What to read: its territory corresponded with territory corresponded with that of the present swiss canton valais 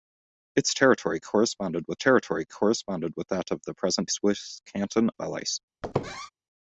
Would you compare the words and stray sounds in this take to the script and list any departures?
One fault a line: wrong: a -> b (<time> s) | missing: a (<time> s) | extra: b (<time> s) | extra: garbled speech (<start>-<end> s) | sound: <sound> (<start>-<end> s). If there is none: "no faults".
sound: squeak (5.8-6.3 s)